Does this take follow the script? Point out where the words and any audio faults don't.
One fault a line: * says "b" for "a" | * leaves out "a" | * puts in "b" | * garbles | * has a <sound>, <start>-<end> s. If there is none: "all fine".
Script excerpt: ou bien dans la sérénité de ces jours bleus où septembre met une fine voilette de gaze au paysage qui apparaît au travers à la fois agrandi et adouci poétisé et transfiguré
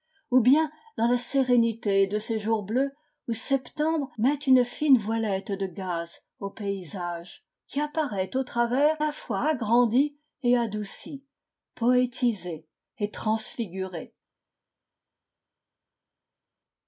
* leaves out "à"